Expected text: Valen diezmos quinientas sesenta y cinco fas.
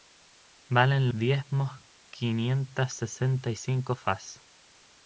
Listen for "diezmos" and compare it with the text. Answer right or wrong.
right